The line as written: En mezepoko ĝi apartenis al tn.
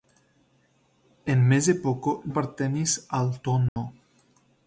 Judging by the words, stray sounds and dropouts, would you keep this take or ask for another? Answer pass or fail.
fail